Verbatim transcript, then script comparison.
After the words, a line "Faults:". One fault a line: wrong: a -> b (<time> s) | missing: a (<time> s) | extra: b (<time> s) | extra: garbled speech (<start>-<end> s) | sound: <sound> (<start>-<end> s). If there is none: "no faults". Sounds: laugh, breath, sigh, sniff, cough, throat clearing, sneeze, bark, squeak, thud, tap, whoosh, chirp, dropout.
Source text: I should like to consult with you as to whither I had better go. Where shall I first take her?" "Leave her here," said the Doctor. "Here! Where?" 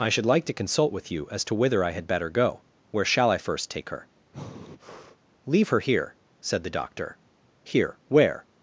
I should like to consult with you as to whither I had better go. Where shall I first take her?" "Leave her here," said the Doctor. "Here! Where?"
Faults:
sound: breath (4.3-5.2 s)